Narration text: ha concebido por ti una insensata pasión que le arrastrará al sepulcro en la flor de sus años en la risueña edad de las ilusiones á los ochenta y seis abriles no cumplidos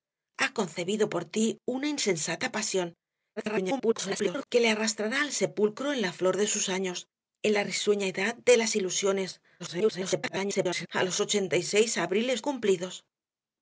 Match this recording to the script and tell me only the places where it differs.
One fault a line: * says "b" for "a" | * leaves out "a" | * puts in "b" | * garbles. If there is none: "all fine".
* garbles
* garbles
* leaves out "no"